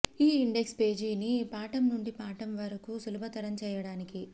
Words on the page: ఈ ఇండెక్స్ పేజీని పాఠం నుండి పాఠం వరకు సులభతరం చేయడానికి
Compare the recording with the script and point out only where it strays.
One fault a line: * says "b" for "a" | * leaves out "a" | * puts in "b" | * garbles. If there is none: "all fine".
all fine